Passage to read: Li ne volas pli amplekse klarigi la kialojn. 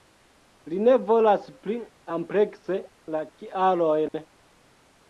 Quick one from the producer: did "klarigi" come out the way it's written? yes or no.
no